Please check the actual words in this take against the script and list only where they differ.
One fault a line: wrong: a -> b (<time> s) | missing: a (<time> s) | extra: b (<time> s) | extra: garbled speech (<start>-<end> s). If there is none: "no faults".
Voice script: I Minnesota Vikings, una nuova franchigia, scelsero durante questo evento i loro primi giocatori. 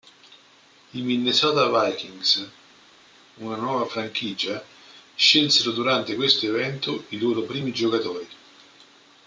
no faults